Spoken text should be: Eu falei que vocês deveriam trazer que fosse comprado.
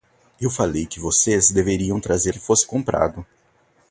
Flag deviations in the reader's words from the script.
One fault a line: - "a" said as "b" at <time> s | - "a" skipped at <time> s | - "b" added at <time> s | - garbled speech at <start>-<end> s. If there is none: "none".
none